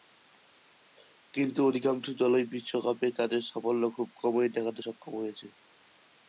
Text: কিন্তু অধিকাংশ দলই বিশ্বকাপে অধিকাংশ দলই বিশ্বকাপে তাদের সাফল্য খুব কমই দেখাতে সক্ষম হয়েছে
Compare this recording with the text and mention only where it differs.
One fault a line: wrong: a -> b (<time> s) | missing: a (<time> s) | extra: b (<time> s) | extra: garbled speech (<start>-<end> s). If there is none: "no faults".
missing: অধিকাংশ দলই বিশ্বকাপে (3.1 s)